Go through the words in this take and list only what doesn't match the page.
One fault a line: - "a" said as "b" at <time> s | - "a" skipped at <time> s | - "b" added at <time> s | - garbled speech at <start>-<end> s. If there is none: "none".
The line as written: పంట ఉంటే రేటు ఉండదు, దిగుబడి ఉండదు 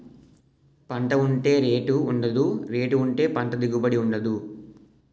- "రేటు ఉంటే పంట" added at 2.7 s